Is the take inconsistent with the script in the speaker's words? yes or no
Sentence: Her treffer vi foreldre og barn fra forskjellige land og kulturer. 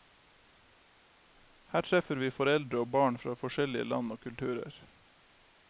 no